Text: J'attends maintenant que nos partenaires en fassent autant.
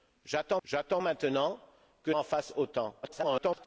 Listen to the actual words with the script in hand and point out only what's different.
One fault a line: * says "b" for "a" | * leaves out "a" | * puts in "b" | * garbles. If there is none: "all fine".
* puts in "j'attends"
* leaves out "nos partenaires"
* garbles